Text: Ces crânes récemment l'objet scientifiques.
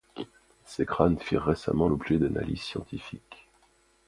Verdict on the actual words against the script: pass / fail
fail